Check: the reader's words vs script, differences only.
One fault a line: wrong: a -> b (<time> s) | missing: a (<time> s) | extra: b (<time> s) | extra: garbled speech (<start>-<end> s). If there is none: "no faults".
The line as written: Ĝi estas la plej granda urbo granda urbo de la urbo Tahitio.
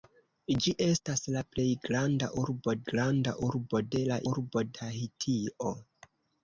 no faults